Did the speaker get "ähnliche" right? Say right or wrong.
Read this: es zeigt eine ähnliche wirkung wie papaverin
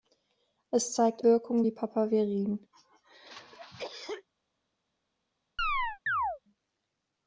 wrong